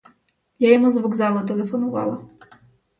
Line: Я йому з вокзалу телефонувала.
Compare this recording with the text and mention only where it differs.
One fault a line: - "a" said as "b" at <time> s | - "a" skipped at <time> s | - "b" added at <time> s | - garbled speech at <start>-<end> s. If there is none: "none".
none